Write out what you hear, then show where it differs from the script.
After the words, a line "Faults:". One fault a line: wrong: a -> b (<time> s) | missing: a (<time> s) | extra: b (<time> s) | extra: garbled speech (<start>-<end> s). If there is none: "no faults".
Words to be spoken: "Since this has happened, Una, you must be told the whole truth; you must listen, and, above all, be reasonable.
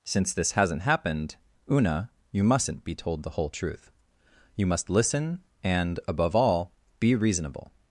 "Since this hasn't happened, Una, you mustn't be told the whole truth; you must listen, and, above all, be reasonable.
Faults:
wrong: has -> hasn't (0.5 s)
wrong: must -> mustn't (2.4 s)